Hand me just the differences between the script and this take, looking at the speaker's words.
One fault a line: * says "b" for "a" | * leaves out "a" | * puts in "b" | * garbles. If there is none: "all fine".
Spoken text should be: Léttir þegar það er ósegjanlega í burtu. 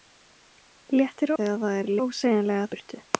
all fine